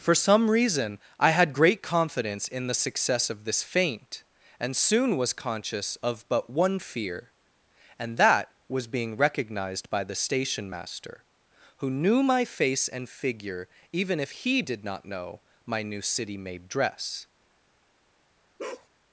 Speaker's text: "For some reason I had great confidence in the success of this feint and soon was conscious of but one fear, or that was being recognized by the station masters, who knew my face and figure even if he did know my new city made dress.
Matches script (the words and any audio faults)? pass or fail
fail